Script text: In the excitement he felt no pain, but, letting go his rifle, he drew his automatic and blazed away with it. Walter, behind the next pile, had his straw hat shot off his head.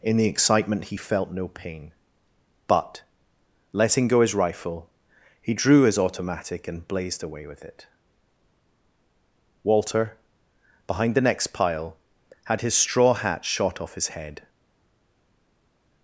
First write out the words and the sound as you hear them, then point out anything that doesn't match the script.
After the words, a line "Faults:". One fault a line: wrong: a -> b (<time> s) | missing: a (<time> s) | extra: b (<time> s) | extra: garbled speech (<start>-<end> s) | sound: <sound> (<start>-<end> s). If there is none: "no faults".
In the excitement he felt no pain, but, letting go his rifle, he drew his automatic and blazed away with it. Walter, behind the next pile, had his straw hat shot off his head.
Faults:
no faults